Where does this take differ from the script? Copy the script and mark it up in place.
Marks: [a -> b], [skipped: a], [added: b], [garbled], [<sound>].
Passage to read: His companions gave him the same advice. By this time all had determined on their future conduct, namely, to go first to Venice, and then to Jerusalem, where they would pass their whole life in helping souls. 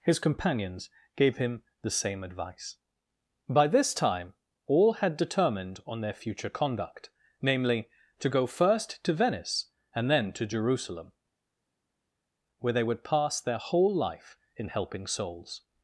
His companions gave him the same advice. By this time all had determined on their future conduct, namely, to go first to Venice, and then to Jerusalem, where they would pass their whole life in helping souls.